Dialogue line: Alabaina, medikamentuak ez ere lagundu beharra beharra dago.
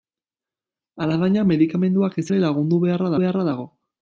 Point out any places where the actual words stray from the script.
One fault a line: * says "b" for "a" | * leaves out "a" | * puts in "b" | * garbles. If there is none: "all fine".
all fine